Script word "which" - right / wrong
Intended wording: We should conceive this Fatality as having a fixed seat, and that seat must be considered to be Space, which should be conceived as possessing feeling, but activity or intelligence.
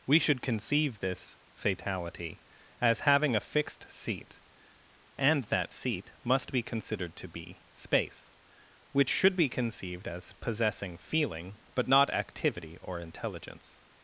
right